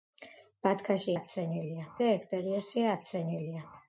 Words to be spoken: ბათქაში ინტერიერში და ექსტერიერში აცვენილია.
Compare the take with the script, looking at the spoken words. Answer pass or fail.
fail